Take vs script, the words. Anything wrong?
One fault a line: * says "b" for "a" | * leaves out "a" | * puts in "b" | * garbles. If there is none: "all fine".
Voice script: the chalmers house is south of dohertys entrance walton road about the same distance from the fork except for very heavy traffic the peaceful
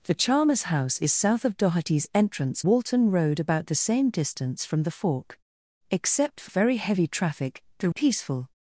all fine